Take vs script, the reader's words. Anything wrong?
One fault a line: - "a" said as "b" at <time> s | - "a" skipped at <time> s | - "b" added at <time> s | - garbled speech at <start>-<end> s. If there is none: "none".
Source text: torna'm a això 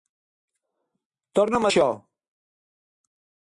none